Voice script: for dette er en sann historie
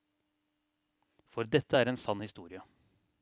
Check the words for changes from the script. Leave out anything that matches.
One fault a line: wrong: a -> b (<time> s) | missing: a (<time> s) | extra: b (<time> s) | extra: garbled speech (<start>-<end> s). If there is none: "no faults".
no faults